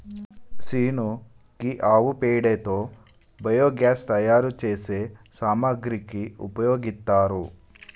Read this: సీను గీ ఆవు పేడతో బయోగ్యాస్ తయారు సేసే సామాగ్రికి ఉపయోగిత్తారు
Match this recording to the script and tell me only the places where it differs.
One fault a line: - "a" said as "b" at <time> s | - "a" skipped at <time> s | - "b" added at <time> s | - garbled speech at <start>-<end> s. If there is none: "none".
none